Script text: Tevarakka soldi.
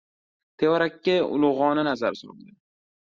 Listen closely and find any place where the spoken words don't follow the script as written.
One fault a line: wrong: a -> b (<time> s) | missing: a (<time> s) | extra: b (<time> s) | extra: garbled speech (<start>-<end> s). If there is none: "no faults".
extra: ulug‘ona nazar (1.4 s)